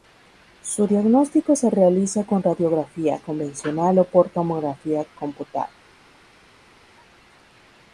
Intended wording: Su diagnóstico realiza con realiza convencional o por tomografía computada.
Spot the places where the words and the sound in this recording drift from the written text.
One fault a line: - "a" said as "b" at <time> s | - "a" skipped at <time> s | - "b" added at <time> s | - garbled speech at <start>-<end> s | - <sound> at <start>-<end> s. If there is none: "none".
- "se" added at 1.5 s
- "realiza" said as "radiografía" at 2.4 s